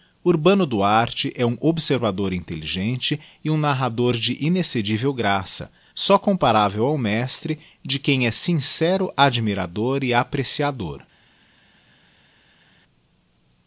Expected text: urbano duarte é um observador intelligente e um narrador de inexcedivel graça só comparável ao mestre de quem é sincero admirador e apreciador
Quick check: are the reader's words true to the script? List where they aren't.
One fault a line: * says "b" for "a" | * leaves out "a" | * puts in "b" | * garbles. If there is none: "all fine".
all fine